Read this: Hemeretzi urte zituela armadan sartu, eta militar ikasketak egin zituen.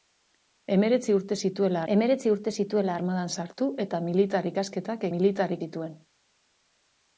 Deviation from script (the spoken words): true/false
true